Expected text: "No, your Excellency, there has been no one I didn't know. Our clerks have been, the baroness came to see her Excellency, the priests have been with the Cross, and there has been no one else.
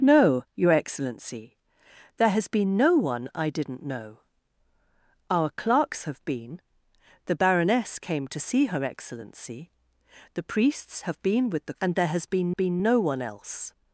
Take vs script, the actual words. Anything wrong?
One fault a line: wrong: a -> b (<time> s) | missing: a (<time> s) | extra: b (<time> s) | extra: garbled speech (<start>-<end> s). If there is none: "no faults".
missing: Cross (11.8 s)
extra: been (12.5 s)